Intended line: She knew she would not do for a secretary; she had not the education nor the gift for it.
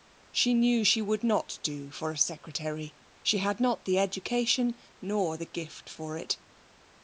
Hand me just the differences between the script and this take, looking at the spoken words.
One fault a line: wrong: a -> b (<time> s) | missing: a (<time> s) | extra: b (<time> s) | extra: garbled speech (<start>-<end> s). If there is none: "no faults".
no faults